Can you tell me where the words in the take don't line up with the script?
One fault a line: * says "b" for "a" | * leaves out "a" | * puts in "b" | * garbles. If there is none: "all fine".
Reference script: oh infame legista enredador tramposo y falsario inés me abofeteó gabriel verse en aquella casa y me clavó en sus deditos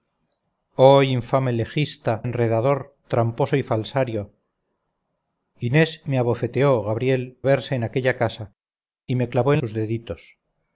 all fine